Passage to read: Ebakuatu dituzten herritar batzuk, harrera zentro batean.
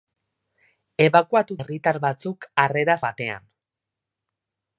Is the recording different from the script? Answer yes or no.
yes